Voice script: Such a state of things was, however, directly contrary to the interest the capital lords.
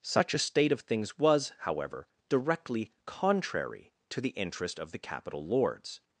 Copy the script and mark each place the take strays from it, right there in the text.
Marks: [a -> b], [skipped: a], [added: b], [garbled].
Such a state of things was, however, directly contrary to the interest [added: of] the capital lords.